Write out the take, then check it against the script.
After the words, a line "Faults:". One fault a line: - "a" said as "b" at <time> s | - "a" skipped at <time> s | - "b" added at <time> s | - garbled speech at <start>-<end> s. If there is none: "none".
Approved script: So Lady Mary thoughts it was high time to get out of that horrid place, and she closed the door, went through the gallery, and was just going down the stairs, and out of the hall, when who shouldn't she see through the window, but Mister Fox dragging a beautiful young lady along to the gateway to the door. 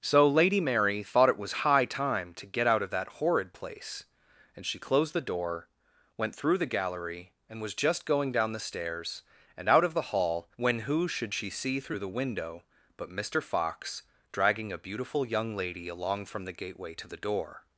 So Lady Mary thought it was high time to get out of that horrid place, and she closed the door, went through the gallery, and was just going down the stairs, and out of the hall, when who should she see through the window, but Mister Fox dragging a beautiful young lady along from the gateway to the door.
Faults:
- "thoughts" said as "thought" at 1.0 s
- "shouldn't" said as "should" at 11.1 s
- "to" said as "from" at 16.3 s